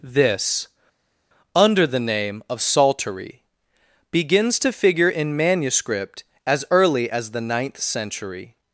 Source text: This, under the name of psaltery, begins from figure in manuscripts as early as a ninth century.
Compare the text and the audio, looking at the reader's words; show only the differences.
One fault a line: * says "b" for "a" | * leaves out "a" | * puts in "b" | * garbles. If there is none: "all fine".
* says "to" for "from"
* says "manuscript" for "manuscripts"
* says "the" for "a"